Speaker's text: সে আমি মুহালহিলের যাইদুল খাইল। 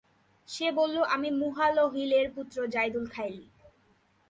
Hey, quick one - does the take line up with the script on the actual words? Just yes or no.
no